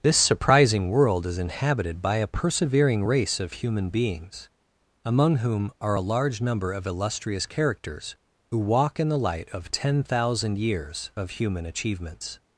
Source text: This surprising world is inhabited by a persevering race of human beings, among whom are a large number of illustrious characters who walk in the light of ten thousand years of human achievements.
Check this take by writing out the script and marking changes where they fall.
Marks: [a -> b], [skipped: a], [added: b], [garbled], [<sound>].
This surprising world is inhabited by a persevering race of human beings, among whom are a large number of illustrious characters who walk in the light of ten thousand years of human achievements.